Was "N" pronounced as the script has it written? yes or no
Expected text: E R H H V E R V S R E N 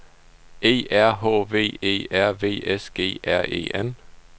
yes